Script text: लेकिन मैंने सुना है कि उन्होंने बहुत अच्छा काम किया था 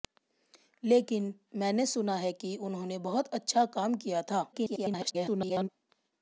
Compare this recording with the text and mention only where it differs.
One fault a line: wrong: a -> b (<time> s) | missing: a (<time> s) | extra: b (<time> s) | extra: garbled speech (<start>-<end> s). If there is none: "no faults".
extra: garbled speech (4.5-5.7 s)